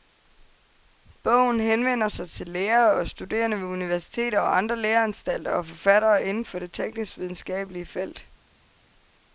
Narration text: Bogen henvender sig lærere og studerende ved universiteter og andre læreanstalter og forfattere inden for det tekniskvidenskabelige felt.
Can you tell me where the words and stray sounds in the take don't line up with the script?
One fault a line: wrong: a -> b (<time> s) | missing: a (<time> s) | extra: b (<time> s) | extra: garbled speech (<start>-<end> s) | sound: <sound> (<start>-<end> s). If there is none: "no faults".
extra: til (2.3 s)